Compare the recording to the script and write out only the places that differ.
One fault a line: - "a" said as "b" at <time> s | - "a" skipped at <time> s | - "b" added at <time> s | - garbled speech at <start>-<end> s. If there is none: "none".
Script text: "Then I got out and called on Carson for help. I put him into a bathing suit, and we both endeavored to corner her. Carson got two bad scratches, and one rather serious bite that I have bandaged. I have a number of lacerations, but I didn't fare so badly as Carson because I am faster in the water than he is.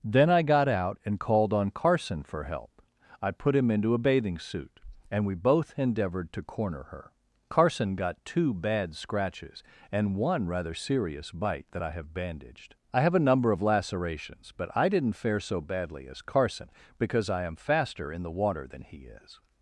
none